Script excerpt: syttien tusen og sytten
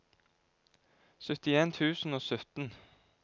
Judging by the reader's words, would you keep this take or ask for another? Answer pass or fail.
pass